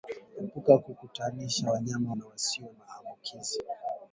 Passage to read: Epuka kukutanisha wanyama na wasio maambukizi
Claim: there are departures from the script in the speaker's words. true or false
false